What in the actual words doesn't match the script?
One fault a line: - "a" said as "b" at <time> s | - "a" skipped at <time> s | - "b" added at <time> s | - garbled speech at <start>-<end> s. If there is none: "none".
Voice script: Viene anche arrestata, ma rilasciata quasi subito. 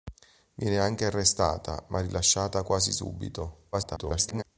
- garbled speech at 3.7-4.4 s